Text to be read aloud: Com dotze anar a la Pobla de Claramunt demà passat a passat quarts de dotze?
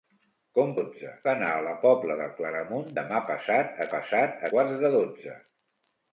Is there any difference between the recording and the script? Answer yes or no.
no